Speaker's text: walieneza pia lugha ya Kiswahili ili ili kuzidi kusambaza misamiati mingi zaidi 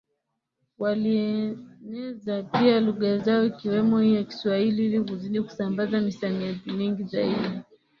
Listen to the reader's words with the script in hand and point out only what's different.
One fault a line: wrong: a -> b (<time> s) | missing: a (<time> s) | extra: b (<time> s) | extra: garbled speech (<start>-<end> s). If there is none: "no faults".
extra: zao ikiwemo hii (3.2 s)
missing: ili (5.0 s)